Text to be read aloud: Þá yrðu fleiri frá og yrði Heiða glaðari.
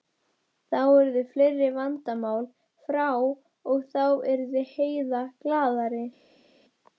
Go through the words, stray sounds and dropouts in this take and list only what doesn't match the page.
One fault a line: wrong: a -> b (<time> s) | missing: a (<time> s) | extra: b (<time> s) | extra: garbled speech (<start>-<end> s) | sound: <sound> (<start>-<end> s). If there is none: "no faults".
extra: vandamál (1.8 s)
extra: þá (3.9 s)